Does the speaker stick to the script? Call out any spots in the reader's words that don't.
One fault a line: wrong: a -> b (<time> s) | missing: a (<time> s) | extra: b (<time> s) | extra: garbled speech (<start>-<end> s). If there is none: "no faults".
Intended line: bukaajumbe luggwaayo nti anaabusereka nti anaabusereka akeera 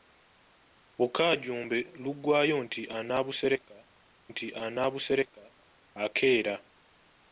no faults